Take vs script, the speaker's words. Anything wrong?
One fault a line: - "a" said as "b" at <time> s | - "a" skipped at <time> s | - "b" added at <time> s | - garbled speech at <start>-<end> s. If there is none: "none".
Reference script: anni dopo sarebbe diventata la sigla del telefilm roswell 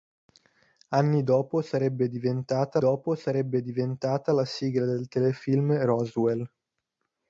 - "dopo sarebbe diventata" added at 2.7 s